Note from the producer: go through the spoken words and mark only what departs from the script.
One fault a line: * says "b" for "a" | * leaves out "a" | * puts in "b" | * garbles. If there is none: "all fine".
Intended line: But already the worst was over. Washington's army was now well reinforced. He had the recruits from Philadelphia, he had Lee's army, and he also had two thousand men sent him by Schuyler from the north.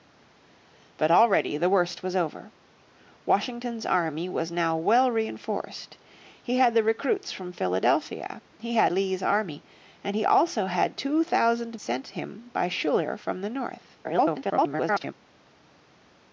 * leaves out "men"
* garbles